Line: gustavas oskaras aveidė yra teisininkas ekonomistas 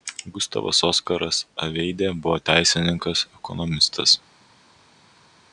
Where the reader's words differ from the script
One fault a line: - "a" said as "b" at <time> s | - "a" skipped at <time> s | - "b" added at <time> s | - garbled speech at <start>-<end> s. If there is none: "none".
- "yra" said as "buvo" at 2.2 s